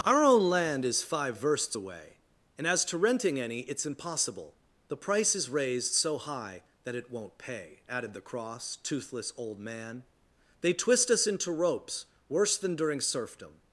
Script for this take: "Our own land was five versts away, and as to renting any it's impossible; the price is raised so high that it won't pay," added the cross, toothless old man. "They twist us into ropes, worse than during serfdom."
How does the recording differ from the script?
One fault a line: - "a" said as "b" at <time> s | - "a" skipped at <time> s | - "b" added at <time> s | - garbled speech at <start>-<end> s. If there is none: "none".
- "was" said as "is" at 0.8 s